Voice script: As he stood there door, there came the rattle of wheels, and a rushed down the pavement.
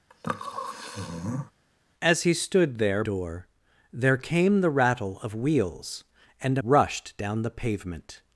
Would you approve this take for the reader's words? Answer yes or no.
yes